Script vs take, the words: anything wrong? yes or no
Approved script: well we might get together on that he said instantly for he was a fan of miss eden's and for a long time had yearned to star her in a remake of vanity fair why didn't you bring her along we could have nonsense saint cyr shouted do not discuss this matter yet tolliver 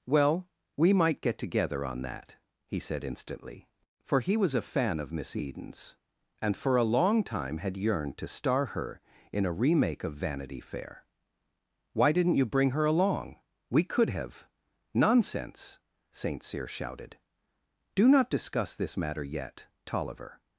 no